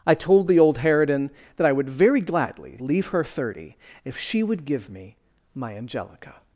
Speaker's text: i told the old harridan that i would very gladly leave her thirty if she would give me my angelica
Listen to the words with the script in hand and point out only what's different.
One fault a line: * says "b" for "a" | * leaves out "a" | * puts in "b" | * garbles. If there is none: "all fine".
all fine